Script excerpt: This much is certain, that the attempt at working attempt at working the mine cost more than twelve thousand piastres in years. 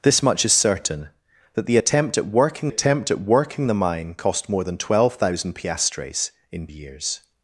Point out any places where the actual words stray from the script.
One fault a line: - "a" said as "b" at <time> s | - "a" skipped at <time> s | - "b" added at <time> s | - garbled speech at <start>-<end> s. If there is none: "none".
none